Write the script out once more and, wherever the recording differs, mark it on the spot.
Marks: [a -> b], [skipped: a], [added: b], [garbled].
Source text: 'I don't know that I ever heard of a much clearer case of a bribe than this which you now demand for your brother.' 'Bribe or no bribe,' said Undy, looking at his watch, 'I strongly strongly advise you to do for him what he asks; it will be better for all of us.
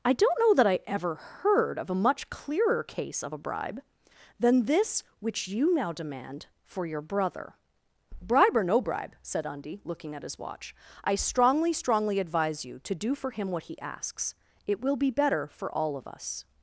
'I don't know that I ever heard of a much clearer case of a bribe than this which you now demand for your brother.' 'Bribe or no bribe,' said Undy, looking at his watch, 'I strongly strongly advise you to do for him what he asks; it will be better for all of us.